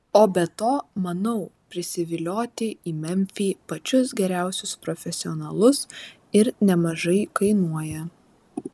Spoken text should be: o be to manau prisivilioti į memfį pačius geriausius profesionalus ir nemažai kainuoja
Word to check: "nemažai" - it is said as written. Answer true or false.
true